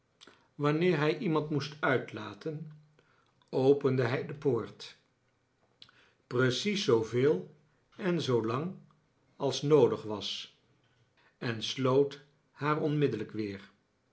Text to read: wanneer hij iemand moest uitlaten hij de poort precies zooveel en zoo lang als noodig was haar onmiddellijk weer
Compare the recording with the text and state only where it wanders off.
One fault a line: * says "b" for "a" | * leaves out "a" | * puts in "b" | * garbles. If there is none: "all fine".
* puts in "opende"
* puts in "en sloot"